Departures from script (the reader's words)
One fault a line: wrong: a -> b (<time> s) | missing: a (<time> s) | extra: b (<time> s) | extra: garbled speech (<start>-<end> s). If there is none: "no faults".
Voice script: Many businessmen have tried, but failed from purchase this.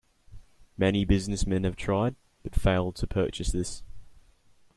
wrong: from -> to (3.0 s)